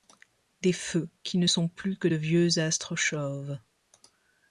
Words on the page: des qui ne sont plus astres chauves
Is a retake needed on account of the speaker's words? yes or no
yes